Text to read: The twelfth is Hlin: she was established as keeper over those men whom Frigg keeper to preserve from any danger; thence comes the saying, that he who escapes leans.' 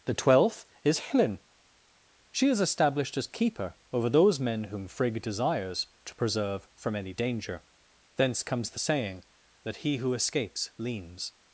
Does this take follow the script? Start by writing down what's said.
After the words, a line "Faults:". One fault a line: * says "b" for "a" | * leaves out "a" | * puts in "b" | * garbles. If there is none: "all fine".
The twelfth is Hlin: she is established as keeper over those men whom Frigg desires to preserve from any danger; thence comes the saying, that he who escapes leans.'
Faults:
* says "is" for "was"
* says "desires" for "keeper"